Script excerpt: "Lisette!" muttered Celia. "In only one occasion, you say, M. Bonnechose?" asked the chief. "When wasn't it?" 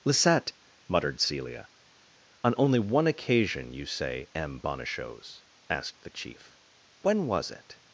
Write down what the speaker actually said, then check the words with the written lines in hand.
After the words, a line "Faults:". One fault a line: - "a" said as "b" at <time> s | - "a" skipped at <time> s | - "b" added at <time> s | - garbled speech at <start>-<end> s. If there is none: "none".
"Lisette!" muttered Celia. "On only one occasion, you say, M. Bonnechose?" asked the chief. "When was it?"
Faults:
- "In" said as "On" at 2.4 s
- "wasn't" said as "was" at 7.3 s